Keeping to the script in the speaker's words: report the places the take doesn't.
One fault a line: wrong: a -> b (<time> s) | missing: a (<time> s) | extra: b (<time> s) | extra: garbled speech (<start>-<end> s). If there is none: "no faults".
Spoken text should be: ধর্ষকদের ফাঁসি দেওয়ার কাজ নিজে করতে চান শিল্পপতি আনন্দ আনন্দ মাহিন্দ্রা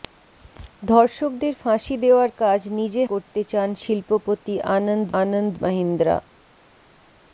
no faults